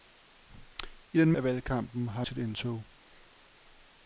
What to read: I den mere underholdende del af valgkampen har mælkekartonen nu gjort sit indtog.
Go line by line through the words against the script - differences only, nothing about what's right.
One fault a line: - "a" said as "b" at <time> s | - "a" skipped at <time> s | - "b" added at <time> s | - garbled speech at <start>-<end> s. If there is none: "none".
- "mere underholdende del" skipped at 1.3 s
- "mælkekartonen nu gjort" skipped at 2.2 s